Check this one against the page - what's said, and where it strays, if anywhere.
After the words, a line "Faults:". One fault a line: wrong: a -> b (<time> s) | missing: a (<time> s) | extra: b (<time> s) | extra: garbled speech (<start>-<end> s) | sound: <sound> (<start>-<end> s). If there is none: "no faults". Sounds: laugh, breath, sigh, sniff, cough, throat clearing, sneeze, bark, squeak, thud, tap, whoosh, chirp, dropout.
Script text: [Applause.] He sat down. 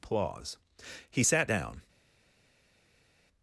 [Applause.] He sat down.
Faults:
no faults